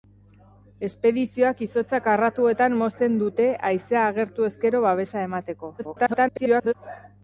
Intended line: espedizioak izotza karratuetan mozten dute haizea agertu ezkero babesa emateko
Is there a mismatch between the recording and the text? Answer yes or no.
yes